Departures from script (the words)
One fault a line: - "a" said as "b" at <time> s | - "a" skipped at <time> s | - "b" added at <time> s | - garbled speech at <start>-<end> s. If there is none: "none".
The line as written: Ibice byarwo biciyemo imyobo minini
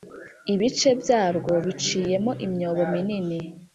none